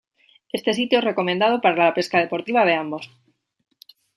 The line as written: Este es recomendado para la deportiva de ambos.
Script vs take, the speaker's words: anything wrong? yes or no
yes